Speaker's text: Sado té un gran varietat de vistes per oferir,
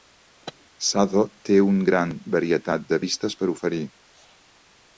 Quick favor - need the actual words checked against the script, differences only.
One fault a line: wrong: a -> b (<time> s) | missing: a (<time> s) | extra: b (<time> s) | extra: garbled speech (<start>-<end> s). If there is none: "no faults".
no faults